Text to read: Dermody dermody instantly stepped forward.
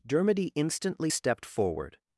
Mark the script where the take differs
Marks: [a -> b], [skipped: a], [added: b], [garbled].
Dermody [skipped: dermody] instantly stepped forward.